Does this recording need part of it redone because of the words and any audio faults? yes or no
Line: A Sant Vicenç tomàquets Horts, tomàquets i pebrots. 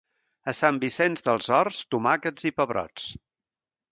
yes